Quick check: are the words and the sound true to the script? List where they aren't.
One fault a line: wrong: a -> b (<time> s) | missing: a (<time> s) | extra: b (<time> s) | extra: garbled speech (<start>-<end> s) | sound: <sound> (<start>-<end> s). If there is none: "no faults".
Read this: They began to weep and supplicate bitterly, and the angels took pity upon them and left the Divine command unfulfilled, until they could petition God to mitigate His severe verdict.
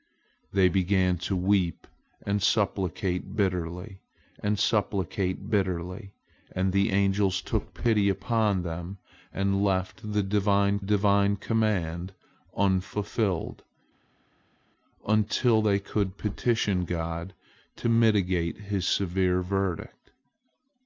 extra: supplicate bitterly and (4.6 s)
extra: Divine (10.8 s)